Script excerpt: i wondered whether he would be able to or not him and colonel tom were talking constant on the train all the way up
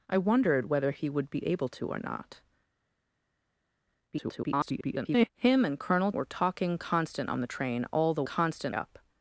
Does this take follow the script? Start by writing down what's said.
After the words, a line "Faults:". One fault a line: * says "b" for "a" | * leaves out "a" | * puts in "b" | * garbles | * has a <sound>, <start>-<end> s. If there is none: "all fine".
i wondered whether he would be able to or not [garbled] him and colonel were talking constant on the train all the constant up
Faults:
* garbles
* leaves out "tom"
* says "constant" for "way"